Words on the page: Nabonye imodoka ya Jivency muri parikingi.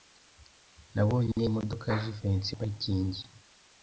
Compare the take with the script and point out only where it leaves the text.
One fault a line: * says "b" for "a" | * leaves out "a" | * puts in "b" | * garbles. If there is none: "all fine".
* leaves out "muri"